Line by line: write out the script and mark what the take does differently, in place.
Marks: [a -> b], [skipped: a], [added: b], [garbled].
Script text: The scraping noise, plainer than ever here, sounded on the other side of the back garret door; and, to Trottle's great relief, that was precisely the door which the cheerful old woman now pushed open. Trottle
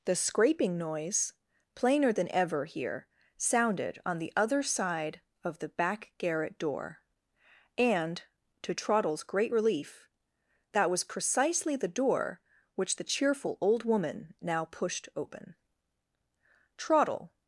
The scraping noise, plainer than ever here, sounded on the other side of the back garret door; and, to Trottle's great relief, that was precisely the door which the cheerful old woman now pushed open. Trottle